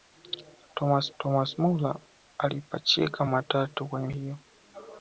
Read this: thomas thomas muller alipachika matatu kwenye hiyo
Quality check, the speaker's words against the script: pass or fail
pass